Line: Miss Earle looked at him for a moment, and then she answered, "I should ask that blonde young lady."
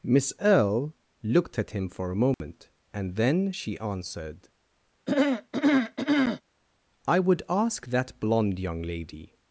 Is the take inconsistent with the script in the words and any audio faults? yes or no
yes